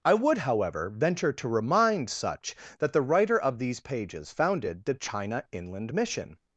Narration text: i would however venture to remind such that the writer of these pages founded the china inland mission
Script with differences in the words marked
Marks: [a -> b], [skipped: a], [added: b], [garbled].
i would however venture to remind such that the writer of these pages founded the china inland mission